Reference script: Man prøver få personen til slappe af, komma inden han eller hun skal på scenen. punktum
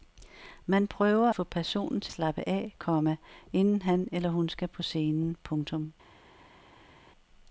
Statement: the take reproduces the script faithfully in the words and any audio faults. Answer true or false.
true